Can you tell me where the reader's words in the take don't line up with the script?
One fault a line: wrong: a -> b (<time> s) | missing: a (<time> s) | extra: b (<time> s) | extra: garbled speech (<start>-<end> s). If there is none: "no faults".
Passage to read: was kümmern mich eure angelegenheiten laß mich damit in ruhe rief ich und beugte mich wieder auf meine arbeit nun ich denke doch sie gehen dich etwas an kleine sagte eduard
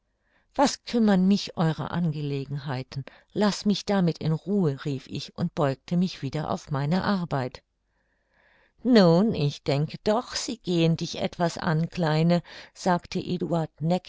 no faults